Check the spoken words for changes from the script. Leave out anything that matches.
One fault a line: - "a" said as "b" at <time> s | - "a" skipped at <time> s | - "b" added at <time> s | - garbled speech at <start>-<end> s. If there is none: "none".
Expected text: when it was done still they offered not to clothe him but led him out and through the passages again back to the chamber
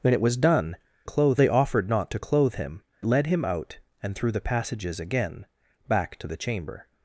- "still" said as "clothe" at 1.0 s
- "but" skipped at 2.8 s